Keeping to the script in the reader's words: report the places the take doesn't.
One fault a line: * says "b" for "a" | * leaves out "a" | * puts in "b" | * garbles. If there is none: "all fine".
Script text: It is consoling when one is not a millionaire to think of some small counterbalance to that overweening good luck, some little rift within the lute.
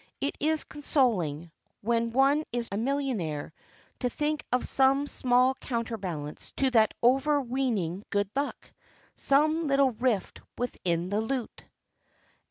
* leaves out "not"